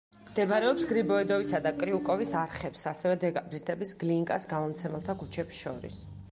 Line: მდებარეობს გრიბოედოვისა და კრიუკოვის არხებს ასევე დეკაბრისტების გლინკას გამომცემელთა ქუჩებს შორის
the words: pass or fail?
pass